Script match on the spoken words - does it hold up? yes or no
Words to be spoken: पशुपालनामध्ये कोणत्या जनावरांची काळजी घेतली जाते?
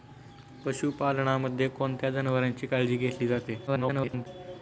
no